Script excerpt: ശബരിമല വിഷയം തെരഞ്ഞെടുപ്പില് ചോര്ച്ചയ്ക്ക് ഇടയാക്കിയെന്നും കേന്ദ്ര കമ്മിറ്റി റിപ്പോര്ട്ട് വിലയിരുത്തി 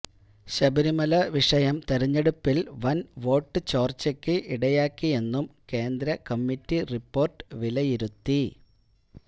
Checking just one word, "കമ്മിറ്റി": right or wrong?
right